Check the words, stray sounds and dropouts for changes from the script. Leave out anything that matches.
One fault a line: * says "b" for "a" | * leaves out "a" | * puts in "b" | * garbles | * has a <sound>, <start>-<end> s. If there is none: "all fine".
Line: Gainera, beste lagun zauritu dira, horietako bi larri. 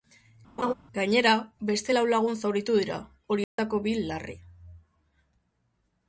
* has a laugh, 0.6-0.7 s
* puts in "lau"
* has a dropout, 3.4-3.6 s